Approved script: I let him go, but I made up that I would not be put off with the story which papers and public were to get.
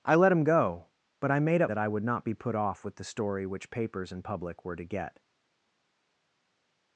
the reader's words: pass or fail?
pass